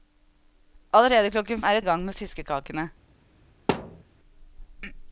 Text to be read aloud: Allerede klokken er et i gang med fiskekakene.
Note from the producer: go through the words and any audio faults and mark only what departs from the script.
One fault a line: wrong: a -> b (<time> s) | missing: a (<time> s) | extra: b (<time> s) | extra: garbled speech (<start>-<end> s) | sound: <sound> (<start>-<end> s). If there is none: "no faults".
sound: thud (3.7-4.0 s)